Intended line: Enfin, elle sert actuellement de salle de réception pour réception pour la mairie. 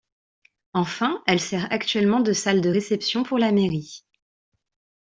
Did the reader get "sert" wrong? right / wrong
right